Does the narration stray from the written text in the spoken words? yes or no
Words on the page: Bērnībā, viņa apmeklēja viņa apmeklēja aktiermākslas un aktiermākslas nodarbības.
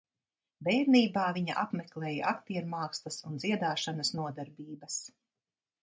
yes